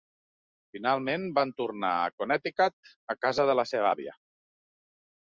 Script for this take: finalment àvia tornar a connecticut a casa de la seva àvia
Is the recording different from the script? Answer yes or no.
yes